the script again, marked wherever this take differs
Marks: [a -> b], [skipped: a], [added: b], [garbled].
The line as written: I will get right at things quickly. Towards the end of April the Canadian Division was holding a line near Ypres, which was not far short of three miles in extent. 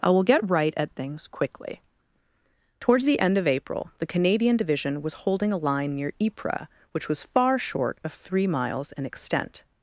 I will get right at things quickly. Towards the end of April the Canadian Division was holding a line near Ypres, which was [skipped: not] far short of three miles in extent.